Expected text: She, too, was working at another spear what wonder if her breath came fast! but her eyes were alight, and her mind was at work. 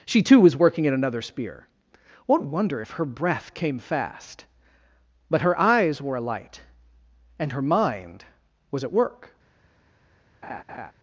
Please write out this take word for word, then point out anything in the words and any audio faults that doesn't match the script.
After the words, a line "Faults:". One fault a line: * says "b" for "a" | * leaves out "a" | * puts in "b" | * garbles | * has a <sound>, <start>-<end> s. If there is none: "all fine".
She, too, was working at another spear what wonder if her breath came fast! but her eyes were alight, and her mind was at work.
Faults:
* has a laugh, 10.4-10.9 s